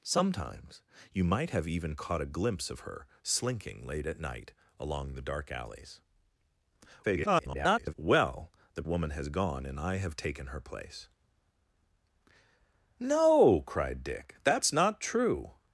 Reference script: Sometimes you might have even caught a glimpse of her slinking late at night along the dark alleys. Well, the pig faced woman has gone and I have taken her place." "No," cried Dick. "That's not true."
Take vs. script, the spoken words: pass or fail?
fail